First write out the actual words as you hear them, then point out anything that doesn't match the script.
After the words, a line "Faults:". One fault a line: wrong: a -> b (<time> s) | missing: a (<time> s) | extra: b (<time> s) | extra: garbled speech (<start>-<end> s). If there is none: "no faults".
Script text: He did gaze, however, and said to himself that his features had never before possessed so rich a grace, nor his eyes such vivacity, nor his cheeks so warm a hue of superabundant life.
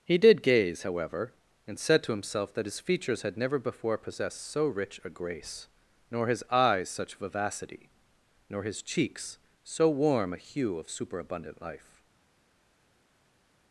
He did gaze, however, and said to himself that his features had never before possessed so rich a grace, nor his eyes such vivacity, nor his cheeks so warm a hue of superabundant life.
Faults:
no faults